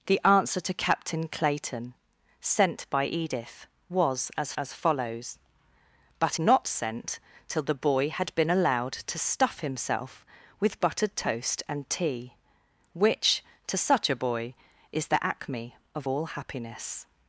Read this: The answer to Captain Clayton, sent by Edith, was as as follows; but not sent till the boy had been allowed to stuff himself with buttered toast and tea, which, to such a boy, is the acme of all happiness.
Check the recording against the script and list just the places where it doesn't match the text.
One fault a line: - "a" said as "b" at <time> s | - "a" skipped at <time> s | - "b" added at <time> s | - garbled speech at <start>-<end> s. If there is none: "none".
none